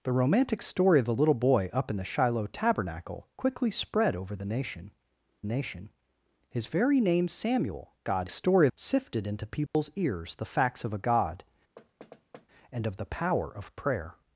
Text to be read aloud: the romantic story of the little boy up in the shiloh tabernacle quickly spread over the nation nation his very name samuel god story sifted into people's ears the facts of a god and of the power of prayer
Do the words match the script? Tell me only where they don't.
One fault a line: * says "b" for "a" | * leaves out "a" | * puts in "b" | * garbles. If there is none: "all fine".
all fine